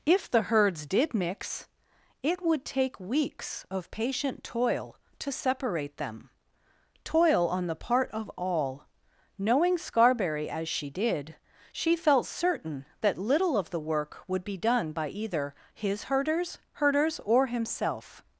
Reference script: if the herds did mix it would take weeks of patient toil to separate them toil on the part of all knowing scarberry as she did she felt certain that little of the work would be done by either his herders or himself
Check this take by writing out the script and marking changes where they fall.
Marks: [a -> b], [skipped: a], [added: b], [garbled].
if the herds did mix it would take weeks of patient toil to separate them toil on the part of all knowing scarberry as she did she felt certain that little of the work would be done by either his herders [added: herders] or himself